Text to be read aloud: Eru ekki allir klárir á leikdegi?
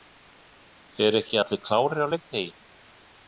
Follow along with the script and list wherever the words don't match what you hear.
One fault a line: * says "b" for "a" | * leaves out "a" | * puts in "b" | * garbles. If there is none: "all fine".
all fine